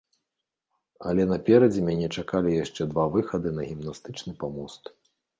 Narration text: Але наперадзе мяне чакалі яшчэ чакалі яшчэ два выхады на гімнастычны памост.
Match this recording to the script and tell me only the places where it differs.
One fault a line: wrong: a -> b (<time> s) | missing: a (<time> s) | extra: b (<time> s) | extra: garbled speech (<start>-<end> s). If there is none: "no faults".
missing: чакалі яшчэ (2.9 s)